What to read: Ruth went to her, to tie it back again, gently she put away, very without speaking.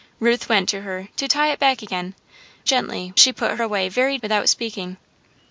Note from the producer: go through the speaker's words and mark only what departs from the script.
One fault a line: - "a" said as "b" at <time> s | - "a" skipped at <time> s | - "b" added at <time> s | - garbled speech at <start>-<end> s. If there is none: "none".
none